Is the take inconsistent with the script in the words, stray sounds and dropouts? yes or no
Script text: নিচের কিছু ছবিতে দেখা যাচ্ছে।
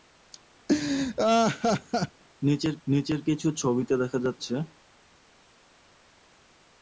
yes